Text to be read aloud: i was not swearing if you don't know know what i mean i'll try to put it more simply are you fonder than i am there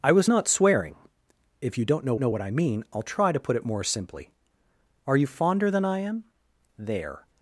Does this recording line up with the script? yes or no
yes